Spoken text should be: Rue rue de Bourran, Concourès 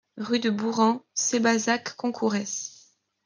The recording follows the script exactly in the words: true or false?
false